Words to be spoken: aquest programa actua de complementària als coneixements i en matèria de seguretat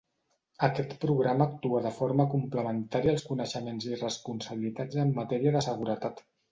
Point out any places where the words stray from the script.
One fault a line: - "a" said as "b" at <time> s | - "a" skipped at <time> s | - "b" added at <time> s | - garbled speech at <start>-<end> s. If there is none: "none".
- "forma" added at 2.0 s
- "responsabilitats" added at 4.1 s